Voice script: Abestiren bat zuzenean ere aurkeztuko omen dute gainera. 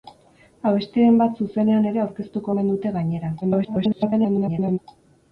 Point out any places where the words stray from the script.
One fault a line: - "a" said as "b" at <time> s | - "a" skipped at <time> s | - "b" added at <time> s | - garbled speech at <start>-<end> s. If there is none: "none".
- garbled speech at 3.4-4.8 s